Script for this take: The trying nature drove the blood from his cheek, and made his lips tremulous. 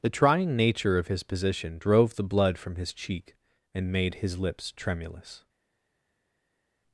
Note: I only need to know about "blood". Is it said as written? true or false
true